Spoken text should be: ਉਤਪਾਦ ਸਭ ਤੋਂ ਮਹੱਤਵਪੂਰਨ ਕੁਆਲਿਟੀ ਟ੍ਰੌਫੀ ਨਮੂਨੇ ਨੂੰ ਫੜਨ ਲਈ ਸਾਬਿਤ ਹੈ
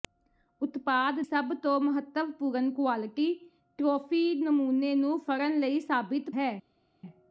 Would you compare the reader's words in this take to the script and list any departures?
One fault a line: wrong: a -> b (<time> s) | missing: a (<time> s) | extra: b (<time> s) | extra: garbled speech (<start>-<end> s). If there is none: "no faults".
no faults